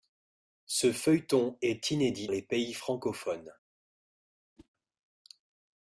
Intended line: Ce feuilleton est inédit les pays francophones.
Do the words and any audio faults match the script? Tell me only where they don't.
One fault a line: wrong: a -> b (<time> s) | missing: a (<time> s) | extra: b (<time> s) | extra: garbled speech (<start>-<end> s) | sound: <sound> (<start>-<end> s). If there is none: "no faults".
sound: whoosh (4.6-4.7 s)